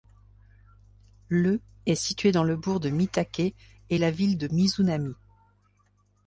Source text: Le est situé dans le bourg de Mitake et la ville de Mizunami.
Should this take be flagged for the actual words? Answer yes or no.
no